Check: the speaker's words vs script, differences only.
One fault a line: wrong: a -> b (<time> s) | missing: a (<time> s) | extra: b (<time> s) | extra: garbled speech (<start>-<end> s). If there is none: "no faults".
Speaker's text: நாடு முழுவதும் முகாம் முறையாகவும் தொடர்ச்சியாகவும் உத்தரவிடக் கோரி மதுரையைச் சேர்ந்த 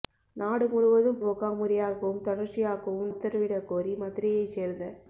no faults